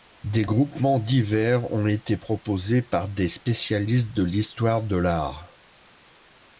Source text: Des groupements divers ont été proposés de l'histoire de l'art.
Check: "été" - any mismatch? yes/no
no